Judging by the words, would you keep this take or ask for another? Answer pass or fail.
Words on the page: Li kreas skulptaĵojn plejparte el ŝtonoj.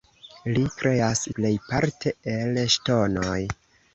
fail